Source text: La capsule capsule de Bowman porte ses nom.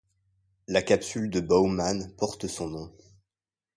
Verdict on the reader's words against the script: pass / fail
fail